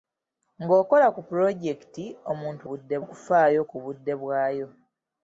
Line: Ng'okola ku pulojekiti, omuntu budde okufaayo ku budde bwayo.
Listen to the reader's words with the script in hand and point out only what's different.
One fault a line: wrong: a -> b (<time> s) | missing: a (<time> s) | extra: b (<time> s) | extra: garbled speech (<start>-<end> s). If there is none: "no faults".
no faults